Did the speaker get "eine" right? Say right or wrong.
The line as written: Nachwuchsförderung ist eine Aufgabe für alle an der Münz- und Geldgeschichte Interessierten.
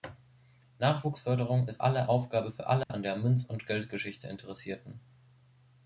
wrong